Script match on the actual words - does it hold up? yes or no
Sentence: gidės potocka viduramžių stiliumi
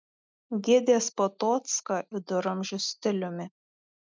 yes